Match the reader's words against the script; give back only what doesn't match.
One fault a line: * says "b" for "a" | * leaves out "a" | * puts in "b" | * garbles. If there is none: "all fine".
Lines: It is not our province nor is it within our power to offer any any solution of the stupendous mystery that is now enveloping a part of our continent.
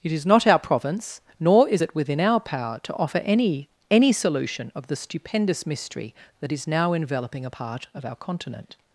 all fine